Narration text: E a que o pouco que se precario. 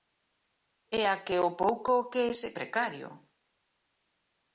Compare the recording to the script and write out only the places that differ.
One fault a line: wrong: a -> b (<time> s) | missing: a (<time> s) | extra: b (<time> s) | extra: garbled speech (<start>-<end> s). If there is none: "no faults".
no faults